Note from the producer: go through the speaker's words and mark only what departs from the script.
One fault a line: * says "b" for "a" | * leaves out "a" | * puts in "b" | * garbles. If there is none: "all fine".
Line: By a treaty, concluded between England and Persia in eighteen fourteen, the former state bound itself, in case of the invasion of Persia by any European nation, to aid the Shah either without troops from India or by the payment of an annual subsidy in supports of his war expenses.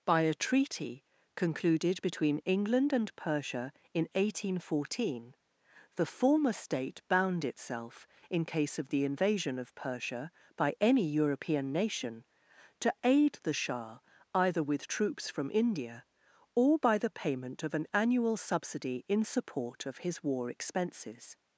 * says "with" for "without"
* says "support" for "supports"